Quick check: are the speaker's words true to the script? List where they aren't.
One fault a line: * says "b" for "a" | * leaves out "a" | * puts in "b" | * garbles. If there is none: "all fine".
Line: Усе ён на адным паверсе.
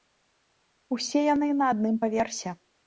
* says "яны" for "ён"